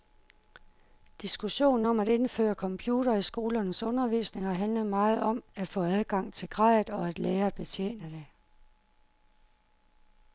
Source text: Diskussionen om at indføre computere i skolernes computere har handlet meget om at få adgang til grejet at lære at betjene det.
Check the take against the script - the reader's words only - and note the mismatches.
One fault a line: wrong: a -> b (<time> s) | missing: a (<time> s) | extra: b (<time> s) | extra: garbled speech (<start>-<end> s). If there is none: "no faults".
wrong: computere -> undervisning (3.8 s)
extra: og (6.9 s)